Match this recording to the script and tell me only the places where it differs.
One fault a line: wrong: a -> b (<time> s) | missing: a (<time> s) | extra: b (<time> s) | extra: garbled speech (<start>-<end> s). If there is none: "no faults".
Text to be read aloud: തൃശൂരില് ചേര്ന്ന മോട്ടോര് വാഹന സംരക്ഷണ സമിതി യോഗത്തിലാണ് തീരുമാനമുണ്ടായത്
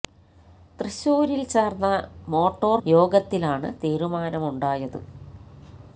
missing: വാഹന സംരക്ഷണ സമിതി (2.8 s)